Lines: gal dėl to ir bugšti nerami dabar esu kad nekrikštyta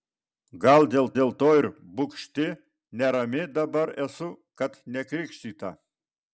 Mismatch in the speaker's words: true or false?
true